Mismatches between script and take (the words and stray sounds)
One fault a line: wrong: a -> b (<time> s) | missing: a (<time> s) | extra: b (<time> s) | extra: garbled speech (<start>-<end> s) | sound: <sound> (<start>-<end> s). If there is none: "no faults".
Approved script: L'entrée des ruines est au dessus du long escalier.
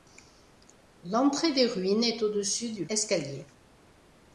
missing: long (2.9 s)